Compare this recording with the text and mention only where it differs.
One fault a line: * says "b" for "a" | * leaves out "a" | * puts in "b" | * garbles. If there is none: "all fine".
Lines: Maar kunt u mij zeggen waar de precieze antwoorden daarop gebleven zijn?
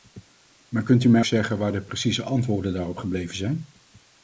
all fine